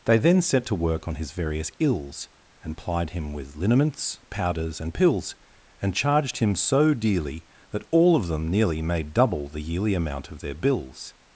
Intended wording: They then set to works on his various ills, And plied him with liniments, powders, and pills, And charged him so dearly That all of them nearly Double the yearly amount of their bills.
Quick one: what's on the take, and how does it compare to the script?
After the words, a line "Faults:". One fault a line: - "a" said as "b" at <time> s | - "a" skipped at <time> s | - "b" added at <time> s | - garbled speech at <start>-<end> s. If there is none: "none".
They then set to work on his various ills, And plied him with liniments, powders, and pills, And charged him so dearly That all of them nearly Made double the yearly amount of their bills.
Faults:
- "works" said as "work" at 0.8 s
- "Made" added at 8.8 s